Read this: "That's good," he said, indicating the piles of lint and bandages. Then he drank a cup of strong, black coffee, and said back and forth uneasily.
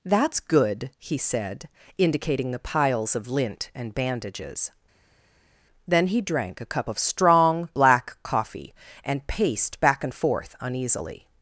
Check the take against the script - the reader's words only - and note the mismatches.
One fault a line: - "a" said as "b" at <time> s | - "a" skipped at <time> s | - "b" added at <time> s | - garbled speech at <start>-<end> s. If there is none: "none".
- "said" said as "paced" at 9.3 s